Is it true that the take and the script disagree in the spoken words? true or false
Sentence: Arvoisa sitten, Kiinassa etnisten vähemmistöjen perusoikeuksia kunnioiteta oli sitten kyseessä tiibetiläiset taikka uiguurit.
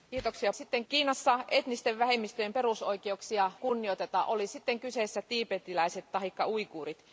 false